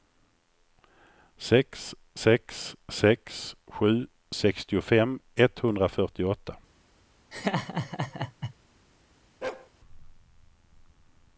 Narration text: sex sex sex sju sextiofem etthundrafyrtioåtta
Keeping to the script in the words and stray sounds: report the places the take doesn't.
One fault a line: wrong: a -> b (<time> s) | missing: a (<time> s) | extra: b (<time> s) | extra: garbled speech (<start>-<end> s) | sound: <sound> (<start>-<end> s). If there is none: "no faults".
sound: laugh (7.3-8.5 s)
sound: bark (9.4-9.7 s)